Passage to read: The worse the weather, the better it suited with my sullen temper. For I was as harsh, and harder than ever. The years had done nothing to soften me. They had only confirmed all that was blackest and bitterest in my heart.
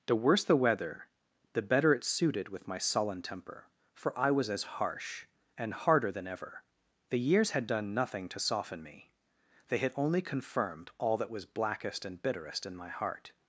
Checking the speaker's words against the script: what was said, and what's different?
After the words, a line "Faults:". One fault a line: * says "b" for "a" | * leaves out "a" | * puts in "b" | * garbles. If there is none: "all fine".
The worse the weather, the better it suited with my sullen temper. For I was as harsh, and harder than ever. The years had done nothing to soften me. They had only confirmed all that was blackest and bitterest in my heart.
Faults:
all fine